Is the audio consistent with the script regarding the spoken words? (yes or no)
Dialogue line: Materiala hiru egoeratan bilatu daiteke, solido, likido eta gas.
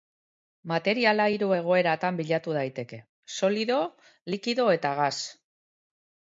yes